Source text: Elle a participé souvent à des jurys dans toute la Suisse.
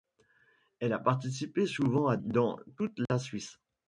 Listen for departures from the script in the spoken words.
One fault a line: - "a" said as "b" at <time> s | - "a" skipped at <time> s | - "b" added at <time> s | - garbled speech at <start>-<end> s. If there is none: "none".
- "des jurys" skipped at 2.2 s